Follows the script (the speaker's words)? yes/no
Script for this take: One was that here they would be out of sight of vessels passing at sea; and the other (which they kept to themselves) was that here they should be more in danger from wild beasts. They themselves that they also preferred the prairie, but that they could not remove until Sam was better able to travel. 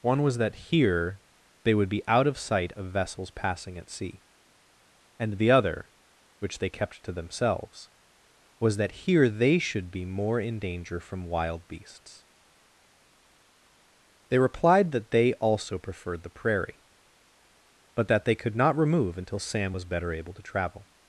no